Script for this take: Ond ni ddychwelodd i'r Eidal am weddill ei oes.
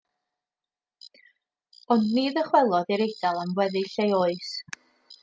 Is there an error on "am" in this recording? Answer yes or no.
no